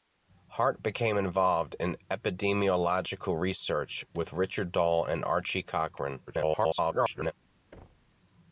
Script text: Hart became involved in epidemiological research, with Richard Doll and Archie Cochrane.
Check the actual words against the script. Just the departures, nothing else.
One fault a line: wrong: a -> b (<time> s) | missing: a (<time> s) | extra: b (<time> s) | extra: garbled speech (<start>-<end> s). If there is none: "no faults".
extra: garbled speech (6.3-7.3 s)